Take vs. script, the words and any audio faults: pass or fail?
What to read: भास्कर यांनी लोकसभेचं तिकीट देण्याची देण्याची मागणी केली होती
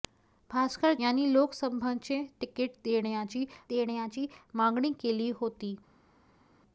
pass